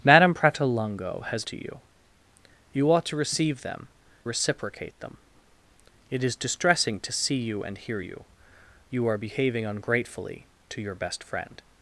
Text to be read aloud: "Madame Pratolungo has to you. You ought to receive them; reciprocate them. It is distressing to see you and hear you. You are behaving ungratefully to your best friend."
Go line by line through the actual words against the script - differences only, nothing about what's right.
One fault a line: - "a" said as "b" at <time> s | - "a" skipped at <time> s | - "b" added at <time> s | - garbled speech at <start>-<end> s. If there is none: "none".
none